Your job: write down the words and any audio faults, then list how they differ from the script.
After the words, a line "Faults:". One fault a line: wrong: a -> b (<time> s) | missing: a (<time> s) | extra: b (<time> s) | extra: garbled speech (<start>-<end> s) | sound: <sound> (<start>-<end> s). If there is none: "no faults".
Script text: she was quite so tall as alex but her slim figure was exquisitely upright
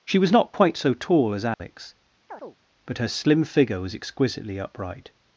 she was not quite so tall as alex but her slim figure was exquisitely upright
Faults:
extra: not (0.3 s)
sound: dropout (1.5-1.6 s)
sound: chirp (2.3-2.6 s)